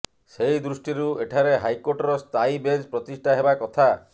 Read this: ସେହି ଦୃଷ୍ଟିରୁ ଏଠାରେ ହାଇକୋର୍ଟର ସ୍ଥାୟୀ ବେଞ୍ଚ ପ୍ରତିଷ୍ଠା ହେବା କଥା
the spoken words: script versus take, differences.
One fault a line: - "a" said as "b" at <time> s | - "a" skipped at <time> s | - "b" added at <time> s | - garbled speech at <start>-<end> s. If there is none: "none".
none